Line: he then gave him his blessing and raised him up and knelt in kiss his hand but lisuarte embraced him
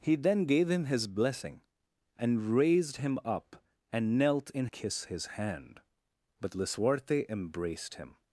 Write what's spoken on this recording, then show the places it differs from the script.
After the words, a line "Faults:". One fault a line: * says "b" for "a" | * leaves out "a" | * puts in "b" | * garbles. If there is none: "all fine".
he then gave him his blessing and raised him up and knelt in kiss his hand but lisuarte embraced him
Faults:
all fine